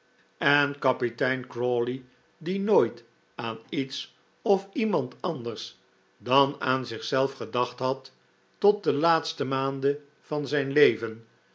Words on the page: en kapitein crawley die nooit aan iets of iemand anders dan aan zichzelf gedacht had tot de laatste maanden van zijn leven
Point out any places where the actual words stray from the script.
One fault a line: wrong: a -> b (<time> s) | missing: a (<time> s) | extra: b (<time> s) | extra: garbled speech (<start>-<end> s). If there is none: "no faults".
no faults